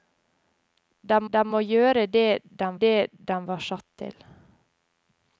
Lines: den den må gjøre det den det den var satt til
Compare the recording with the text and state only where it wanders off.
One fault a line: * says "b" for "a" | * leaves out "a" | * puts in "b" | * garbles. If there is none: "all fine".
all fine